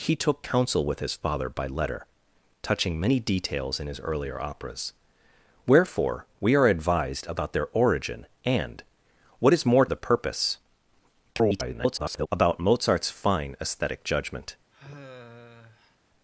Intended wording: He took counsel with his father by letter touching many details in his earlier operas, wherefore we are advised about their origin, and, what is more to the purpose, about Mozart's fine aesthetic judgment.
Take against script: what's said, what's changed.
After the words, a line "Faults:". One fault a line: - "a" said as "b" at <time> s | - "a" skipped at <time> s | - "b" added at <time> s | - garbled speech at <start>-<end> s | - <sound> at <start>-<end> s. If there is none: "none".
He took counsel with his father by letter touching many details in his earlier operas, wherefore we are advised about their origin, and, what is more the purpose, [garbled] about Mozart's fine aesthetic judgment.
Faults:
- "to" skipped at 9.8 s
- garbled speech at 11.3-12.3 s
- sigh at 14.7-16.0 s